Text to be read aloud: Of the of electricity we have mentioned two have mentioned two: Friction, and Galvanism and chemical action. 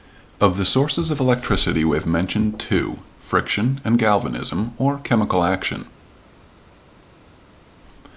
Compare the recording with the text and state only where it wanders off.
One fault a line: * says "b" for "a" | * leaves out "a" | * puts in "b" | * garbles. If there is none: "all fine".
* puts in "sources"
* leaves out "have mentioned two"
* says "or" for "and"